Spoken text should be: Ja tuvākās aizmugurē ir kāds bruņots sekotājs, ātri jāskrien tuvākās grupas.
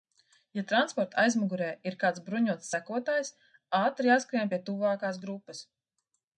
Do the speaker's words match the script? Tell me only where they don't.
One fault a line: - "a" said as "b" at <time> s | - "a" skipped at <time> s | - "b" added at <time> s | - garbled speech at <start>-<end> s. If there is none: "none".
- "tuvākās" said as "transporta" at 0.7 s
- "pie" added at 4.5 s